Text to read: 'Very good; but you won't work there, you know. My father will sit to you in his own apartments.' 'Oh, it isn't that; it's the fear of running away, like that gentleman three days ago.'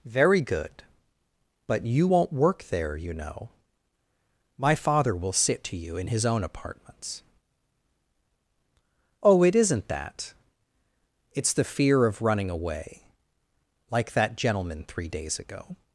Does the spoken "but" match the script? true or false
true